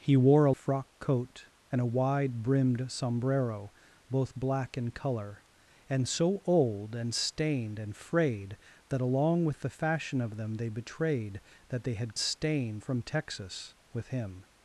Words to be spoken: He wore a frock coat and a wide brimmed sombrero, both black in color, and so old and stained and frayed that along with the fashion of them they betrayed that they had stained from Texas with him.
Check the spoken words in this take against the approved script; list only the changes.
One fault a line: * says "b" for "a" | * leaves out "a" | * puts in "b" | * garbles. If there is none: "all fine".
all fine